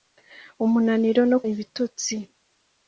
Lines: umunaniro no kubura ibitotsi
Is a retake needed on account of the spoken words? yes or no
yes